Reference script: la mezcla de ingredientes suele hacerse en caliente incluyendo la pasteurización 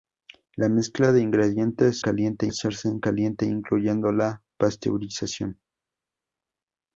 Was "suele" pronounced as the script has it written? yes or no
no